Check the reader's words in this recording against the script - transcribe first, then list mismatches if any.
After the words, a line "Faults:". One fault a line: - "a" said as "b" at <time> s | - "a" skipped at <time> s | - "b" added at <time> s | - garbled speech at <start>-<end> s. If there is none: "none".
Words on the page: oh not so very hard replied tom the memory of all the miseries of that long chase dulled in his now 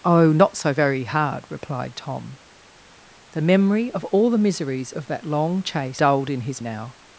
oh not so very hard replied tom the memory of all the miseries of that long chase dulled in his now
Faults:
none